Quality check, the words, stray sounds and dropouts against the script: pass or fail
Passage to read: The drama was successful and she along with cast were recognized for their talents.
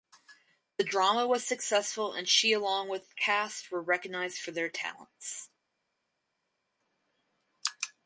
pass